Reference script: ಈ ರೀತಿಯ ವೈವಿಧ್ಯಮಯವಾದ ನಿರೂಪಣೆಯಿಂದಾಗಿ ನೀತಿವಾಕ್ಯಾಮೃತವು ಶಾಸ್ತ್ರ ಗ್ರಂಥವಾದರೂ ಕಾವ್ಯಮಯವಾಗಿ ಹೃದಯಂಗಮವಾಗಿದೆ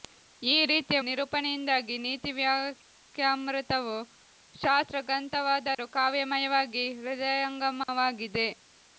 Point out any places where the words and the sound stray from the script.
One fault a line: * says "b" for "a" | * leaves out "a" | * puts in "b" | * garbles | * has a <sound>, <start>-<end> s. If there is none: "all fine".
* leaves out "ವೈವಿಧ್ಯಮಯವಾದ"
* has a dropout, 5.7-5.8 s
* has a dropout, 7.8-7.9 s